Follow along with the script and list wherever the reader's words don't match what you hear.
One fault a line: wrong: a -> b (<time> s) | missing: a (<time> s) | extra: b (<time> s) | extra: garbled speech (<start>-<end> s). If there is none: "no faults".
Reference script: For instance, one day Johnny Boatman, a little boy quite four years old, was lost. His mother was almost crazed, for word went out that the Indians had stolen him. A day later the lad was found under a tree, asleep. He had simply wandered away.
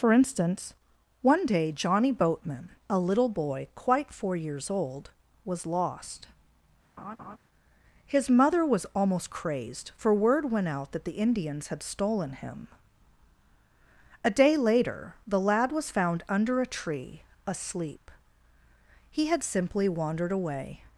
no faults